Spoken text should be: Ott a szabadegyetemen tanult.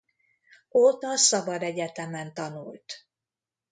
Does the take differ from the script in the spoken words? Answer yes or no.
no